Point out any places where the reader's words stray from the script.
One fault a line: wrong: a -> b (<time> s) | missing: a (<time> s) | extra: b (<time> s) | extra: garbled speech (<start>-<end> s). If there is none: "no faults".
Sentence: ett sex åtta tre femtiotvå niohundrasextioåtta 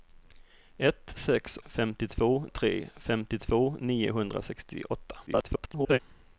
wrong: åtta -> femtiotvå (1.7 s)
extra: garbled speech (5.3-6.0 s)